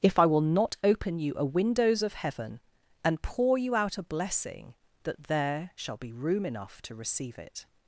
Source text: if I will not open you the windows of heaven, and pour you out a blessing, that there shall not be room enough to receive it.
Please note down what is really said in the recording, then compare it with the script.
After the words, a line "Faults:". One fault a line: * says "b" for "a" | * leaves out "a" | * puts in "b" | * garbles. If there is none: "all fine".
if I will not open you a windows of heaven, and pour you out a blessing, that there shall be room enough to receive it.
Faults:
* says "a" for "the"
* leaves out "not"